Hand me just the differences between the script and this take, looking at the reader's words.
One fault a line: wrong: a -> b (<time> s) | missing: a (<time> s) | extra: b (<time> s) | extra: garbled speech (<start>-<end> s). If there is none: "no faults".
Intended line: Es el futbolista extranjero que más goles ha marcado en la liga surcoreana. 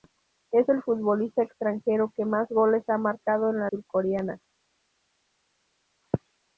missing: liga (3.7 s)